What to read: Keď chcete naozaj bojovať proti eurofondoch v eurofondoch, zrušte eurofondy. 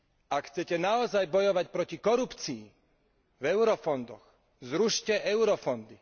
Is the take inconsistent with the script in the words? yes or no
yes